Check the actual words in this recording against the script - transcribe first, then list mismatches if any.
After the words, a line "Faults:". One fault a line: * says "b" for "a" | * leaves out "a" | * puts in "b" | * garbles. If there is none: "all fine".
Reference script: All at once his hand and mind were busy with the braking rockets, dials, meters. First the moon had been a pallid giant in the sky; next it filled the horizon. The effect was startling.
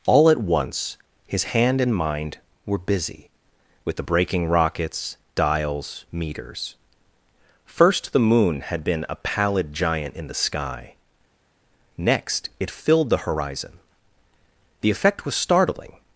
All at once his hand and mind were busy with the braking rockets, dials, meters. First the moon had been a pallid giant in the sky; next it filled the horizon. The effect was startling.
Faults:
all fine